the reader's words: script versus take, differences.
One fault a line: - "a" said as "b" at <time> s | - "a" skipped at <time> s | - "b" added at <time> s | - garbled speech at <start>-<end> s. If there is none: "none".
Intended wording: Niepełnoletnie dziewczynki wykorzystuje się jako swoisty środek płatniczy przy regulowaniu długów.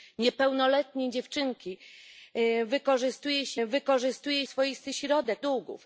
- "jako" said as "wykorzystuje" at 3.7 s
- "płatniczy przy regulowaniu" skipped at 5.4 s